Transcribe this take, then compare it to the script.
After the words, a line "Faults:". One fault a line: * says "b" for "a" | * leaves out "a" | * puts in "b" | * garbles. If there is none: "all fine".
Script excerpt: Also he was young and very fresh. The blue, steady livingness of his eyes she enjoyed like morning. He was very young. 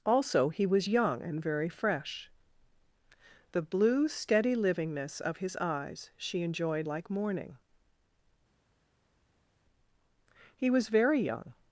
Also he was young and very fresh. The blue, steady livingness of his eyes she enjoyed like morning. He was very young.
Faults:
all fine